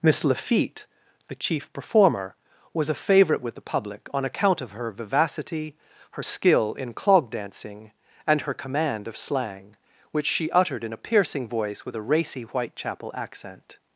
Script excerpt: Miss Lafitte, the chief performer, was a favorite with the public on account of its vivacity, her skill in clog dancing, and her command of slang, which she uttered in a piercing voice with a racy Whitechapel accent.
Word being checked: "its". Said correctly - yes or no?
no